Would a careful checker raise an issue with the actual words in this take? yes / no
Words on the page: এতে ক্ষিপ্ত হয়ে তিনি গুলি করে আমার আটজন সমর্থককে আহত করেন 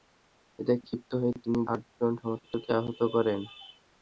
yes